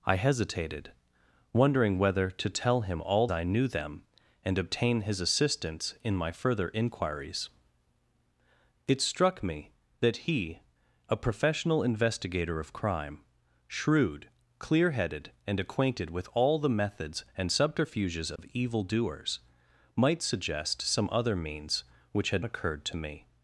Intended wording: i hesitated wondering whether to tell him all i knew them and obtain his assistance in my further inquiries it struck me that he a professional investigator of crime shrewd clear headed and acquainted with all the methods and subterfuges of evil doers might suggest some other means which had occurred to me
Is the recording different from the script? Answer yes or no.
no